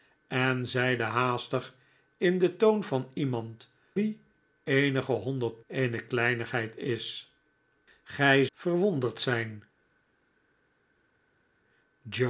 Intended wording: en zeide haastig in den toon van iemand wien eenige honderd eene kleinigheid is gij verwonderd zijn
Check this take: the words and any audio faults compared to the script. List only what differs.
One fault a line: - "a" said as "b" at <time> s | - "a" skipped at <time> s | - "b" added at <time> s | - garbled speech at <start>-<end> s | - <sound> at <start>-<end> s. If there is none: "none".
none